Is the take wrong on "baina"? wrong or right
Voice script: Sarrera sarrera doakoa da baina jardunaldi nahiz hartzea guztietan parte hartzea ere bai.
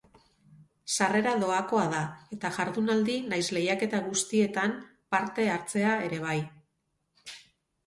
wrong